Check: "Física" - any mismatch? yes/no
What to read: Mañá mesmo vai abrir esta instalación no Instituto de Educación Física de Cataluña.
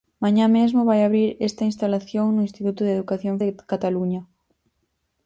yes